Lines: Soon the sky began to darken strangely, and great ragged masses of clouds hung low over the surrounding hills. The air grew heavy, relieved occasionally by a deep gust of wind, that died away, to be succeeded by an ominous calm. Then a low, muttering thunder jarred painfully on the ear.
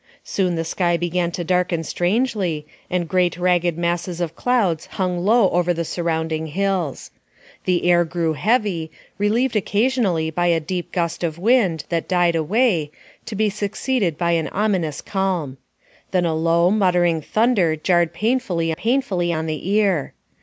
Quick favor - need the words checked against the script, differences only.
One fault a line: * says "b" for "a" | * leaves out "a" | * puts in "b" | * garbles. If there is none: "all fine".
* puts in "painfully"